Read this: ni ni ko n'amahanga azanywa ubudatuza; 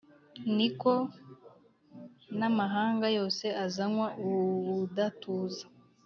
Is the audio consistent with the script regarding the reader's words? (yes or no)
no